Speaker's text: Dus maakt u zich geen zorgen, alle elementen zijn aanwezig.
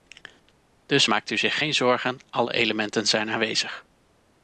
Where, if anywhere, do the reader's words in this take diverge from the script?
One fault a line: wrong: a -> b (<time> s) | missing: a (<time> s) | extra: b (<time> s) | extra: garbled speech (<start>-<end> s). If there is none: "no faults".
no faults